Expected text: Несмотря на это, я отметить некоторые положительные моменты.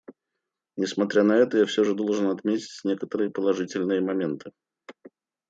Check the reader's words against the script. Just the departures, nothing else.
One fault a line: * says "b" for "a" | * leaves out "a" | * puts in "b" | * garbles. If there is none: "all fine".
* puts in "все же должен"